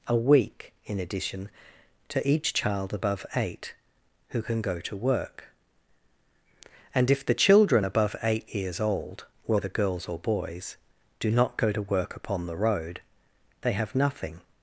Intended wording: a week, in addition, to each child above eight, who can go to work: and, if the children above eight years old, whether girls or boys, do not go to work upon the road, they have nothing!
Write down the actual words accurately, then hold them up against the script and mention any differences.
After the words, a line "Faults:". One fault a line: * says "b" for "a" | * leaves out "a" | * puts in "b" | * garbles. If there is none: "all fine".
a week, in addition, to each child above eight, who can go to work: and, if the children above eight years old, whether girls or boys, do not go to work upon the road, they have nothing!
Faults:
all fine